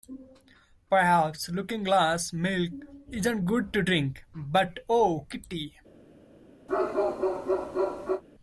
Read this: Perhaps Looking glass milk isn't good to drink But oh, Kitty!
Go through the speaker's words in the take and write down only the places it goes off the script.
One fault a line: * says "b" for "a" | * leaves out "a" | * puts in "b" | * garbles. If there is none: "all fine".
all fine